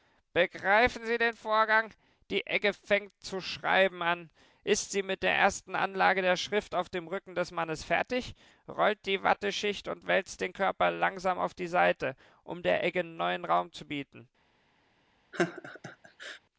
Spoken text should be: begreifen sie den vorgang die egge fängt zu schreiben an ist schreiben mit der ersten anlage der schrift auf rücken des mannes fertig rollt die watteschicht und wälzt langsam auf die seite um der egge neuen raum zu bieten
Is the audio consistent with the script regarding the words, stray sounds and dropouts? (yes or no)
no